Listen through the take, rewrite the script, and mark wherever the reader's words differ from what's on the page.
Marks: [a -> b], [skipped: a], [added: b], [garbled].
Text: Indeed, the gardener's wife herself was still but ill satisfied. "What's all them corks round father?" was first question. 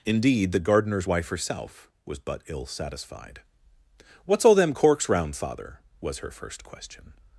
Indeed, the gardener's wife herself was [skipped: still] but ill satisfied. "What's all them corks round father?" was [added: her] first question.